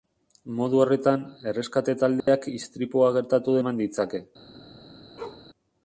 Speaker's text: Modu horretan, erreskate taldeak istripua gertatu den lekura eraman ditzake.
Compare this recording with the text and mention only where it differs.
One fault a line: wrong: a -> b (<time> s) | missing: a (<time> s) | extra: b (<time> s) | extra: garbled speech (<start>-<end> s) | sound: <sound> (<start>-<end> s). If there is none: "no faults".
sound: dropout (2.2-2.3 s)
missing: den lekura (3.6 s)
sound: bark (5.2-5.5 s)